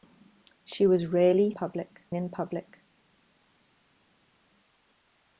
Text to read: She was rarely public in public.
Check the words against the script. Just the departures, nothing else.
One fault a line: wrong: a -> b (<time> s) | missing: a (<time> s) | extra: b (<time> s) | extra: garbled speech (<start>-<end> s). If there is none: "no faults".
no faults